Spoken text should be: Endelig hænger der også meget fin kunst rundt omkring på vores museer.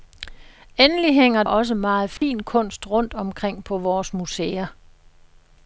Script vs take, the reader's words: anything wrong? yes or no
yes